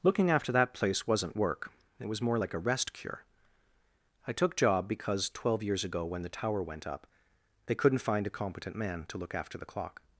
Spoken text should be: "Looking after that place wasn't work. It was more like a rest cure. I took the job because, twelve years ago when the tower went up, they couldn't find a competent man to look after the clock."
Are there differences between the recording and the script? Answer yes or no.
yes